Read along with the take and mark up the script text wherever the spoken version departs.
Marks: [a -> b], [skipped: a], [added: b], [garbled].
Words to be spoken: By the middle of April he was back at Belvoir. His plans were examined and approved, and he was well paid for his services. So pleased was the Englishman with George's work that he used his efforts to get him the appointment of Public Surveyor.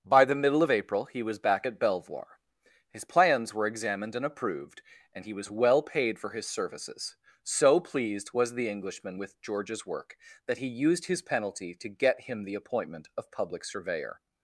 By the middle of April he was back at Belvoir. His plans were examined and approved, and he was well paid for his services. So pleased was the Englishman with George's work that he used his [efforts -> penalty] to get him the appointment of Public Surveyor.